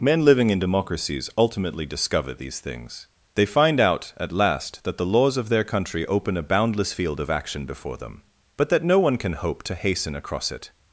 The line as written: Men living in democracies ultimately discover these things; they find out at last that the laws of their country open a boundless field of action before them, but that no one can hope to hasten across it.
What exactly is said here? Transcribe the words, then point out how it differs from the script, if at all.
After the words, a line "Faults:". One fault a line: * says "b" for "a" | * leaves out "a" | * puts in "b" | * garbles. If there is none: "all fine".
Men living in democracies ultimately discover these things; they find out at last that the laws of their country open a boundless field of action before them, but that no one can hope to hasten across it.
Faults:
all fine